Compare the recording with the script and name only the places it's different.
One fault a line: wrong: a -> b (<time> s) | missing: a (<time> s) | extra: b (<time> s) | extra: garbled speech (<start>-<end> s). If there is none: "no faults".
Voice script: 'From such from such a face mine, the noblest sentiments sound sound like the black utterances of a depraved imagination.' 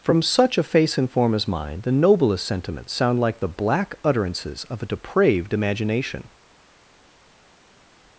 wrong: from such a face -> a face and form as (0.6 s)
missing: sound (3.2 s)